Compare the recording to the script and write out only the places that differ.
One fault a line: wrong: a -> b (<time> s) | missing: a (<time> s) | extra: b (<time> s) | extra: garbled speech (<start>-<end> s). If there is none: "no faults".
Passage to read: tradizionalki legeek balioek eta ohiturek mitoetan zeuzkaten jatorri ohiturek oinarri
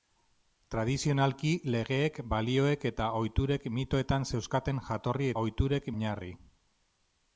no faults